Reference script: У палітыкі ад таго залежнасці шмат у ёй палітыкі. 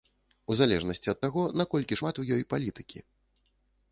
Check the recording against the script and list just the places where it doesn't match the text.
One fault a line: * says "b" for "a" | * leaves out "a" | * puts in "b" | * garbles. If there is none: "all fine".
* says "залежнасці" for "палітыкі"
* says "наколькі" for "залежнасці"